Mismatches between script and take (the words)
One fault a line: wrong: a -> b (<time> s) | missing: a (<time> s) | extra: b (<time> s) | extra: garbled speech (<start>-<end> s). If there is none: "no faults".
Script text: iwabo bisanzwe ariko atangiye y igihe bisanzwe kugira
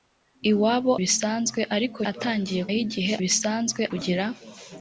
no faults